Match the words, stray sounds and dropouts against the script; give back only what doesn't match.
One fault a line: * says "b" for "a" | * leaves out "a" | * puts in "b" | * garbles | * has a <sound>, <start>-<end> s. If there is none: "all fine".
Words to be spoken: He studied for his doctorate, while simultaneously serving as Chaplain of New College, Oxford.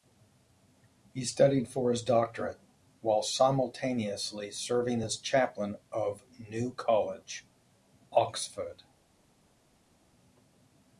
all fine